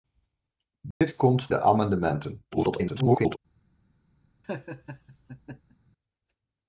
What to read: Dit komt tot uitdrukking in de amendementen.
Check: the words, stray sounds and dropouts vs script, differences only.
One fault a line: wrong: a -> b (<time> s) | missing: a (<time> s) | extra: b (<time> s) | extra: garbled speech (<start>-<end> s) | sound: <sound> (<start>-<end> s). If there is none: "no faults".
sound: dropout (0.9-1.0 s)
missing: tot uitdrukking in (1.5 s)
extra: garbled speech (2.5-3.4 s)
sound: laugh (4.4-5.8 s)